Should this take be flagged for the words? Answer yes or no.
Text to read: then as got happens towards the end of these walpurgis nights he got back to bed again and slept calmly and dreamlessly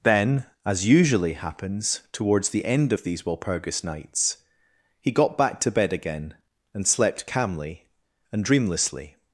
yes